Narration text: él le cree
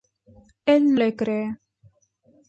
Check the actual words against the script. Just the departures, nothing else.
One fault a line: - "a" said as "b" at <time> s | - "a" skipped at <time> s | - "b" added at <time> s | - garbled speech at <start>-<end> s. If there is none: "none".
none